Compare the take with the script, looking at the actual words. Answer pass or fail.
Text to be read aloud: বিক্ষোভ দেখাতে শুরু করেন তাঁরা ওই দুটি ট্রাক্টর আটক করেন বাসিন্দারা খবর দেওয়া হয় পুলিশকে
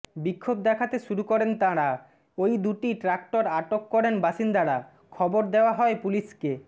pass